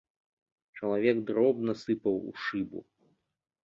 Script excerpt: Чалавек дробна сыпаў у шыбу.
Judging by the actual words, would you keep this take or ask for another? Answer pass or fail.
pass